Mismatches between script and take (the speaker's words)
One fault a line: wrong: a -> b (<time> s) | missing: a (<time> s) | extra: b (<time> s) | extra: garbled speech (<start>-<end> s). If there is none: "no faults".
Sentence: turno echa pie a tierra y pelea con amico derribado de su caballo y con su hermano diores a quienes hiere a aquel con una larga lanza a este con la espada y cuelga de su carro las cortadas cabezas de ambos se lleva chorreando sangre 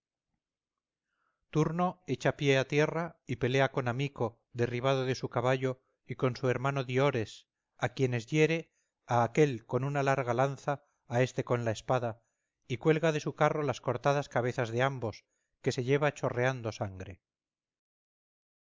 extra: que (15.6 s)